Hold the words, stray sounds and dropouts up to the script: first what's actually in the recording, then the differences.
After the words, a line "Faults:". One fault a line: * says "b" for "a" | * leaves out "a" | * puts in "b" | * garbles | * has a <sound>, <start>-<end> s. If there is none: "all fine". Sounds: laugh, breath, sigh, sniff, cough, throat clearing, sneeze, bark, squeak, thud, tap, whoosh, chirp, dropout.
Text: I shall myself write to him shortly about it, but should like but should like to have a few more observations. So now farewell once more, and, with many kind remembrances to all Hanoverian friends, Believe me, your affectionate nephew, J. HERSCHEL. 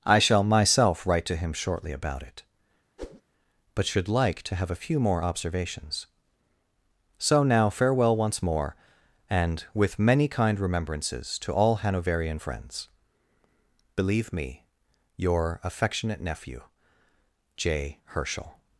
I shall myself write to him shortly about it, but should like to have a few more observations. So now farewell once more, and, with many kind remembrances to all Hanoverian friends, Believe me, your affectionate nephew, J. HERSCHEL.
Faults:
* has a whoosh, 3.0-3.2 s
* leaves out "but should like"